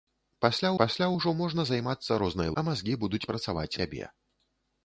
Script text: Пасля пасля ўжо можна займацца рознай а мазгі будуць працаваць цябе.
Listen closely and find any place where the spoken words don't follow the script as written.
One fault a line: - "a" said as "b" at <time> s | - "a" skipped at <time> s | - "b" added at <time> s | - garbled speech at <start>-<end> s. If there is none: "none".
none